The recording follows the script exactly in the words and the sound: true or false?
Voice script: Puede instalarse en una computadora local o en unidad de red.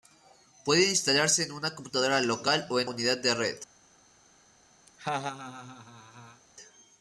false